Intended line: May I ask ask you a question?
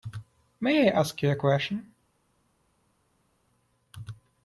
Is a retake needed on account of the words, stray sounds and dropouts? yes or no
yes